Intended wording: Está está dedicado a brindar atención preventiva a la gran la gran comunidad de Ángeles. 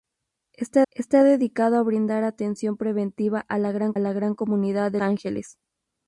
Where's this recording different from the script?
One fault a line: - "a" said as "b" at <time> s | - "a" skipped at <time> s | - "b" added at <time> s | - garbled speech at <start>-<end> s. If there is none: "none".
none